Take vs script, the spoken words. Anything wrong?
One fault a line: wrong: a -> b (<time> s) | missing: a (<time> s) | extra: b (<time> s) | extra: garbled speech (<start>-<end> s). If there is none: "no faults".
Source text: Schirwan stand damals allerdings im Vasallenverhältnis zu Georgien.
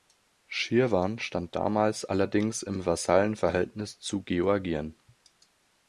no faults